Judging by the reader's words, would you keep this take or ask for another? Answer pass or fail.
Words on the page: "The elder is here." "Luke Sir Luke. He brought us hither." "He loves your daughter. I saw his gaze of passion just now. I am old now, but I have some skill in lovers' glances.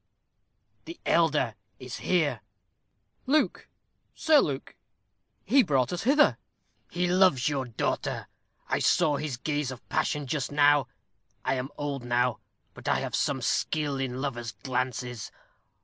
pass